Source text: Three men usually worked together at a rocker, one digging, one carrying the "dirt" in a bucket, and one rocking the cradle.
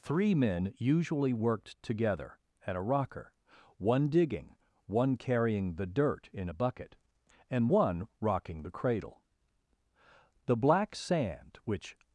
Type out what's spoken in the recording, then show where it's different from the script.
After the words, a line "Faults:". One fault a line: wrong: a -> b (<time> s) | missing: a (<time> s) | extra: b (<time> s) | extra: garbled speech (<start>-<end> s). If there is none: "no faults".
Three men usually worked together at a rocker, one digging, one carrying the "dirt" in a bucket, and one rocking the cradle. The black sand, which
Faults:
extra: The black sand which (10.5 s)